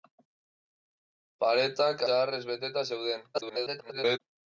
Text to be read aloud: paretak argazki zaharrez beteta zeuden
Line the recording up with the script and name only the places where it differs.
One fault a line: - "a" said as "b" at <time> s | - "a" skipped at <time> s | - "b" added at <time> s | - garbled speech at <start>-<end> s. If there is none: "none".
- "argazki" skipped at 2.0 s
- garbled speech at 3.3-4.2 s